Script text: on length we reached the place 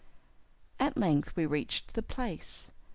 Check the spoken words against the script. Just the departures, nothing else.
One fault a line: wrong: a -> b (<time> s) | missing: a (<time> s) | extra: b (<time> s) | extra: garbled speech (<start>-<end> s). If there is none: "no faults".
wrong: on -> at (0.8 s)